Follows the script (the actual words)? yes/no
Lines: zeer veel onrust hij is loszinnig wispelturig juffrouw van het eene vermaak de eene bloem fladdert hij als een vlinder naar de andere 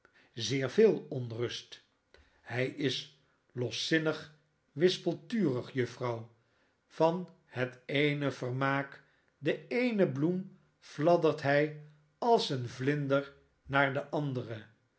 yes